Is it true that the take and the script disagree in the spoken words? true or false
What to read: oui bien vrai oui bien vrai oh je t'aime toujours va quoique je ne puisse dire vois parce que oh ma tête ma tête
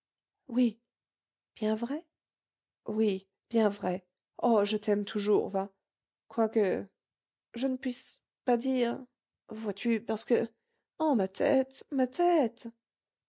true